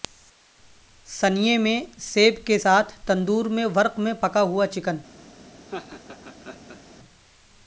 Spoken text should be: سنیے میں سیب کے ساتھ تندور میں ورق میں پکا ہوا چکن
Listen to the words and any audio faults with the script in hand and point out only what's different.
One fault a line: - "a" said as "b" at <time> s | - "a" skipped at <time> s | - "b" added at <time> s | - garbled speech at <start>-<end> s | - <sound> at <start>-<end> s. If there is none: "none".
- laugh at 5.7-6.8 s